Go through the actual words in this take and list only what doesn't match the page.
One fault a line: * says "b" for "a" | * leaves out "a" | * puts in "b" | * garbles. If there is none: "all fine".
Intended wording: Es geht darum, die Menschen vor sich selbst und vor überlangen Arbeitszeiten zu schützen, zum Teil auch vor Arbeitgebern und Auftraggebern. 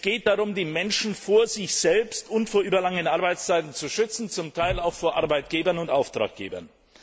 all fine